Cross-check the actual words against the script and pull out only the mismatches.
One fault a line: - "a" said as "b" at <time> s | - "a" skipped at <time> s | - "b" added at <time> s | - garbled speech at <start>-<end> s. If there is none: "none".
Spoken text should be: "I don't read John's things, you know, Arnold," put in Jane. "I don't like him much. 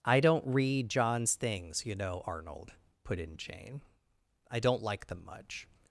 - "him" said as "them" at 5.1 s